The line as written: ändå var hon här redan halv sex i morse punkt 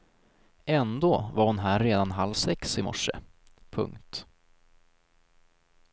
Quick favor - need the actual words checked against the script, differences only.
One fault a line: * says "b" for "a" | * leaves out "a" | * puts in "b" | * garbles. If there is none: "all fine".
all fine